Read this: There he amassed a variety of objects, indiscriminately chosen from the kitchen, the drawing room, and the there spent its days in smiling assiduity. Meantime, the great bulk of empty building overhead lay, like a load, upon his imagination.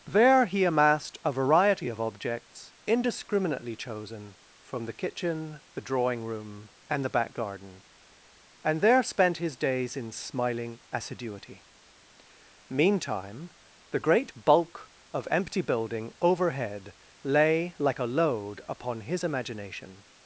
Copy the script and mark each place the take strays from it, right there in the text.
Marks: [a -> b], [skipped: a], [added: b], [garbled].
There he amassed a variety of objects, indiscriminately chosen from the kitchen, the drawing room, and the [added: back garden and] there spent [its -> his] days in smiling assiduity. Meantime, the great bulk of empty building overhead lay, like a load, upon his imagination.